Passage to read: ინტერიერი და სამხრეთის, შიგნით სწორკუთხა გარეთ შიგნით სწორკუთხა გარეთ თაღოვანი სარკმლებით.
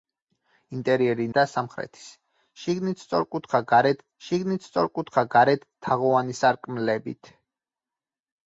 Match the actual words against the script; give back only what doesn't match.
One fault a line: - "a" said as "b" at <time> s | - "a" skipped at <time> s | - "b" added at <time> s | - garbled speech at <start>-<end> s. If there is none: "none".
none